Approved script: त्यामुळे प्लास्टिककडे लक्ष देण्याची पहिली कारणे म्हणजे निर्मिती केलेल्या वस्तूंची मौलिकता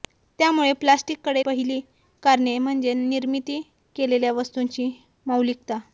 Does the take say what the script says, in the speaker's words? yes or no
no